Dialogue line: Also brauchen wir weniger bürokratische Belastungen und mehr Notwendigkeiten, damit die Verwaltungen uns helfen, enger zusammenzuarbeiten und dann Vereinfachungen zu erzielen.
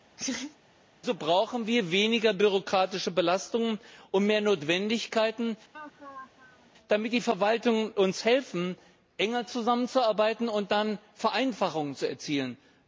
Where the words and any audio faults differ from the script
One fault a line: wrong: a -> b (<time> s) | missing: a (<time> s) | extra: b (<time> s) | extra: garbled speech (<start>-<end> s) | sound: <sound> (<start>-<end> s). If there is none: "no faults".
sound: laugh (0.2-0.6 s)
sound: laugh (5.7-6.7 s)